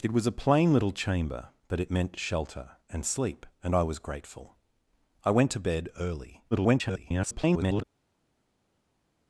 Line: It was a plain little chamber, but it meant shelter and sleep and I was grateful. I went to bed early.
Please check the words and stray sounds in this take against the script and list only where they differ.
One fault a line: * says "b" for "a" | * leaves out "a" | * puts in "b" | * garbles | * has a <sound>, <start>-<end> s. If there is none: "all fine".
* garbles